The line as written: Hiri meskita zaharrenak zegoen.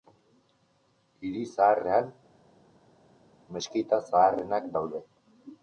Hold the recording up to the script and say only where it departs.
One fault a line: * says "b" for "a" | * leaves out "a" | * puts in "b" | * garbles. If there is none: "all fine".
* puts in "zaharrean"
* says "daude" for "zegoen"